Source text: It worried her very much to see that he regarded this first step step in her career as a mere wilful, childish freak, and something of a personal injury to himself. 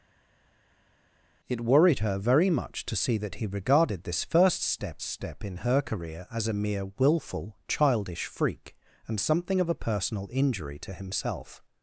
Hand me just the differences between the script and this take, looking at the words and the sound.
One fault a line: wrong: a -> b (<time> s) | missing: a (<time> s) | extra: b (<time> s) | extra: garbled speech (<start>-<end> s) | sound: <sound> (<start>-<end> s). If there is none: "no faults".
no faults